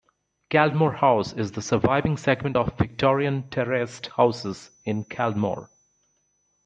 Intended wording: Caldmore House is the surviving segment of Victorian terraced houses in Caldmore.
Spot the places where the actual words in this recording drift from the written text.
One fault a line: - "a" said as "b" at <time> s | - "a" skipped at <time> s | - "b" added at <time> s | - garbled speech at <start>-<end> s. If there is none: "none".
none